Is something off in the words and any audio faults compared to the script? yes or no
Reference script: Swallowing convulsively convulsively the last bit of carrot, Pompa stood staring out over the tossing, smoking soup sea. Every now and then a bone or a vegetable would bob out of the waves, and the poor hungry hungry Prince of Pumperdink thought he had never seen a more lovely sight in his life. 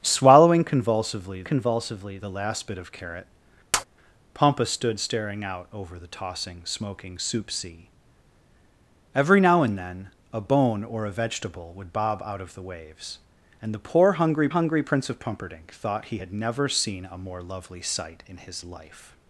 yes